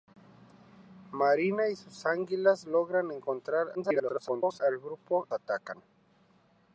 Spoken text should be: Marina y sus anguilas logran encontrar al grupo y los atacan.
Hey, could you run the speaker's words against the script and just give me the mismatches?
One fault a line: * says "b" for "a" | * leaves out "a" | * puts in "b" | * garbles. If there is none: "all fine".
* garbles
* leaves out "y los"